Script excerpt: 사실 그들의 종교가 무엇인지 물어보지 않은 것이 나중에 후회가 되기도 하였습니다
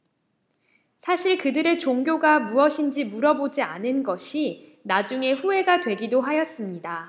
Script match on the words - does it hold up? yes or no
yes